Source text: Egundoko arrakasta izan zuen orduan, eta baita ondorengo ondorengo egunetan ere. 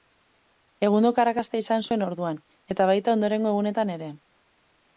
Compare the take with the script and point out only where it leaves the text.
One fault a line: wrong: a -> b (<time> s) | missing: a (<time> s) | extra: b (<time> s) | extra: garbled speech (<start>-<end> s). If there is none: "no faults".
missing: ondorengo (3.5 s)